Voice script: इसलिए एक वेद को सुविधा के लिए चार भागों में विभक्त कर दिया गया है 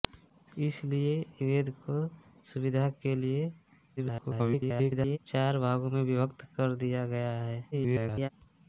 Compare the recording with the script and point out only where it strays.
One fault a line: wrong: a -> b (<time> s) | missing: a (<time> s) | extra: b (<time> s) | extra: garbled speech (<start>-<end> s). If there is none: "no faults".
missing: एक (1.1 s)
extra: garbled speech (4.0-5.2 s)
extra: garbled speech (7.7-8.3 s)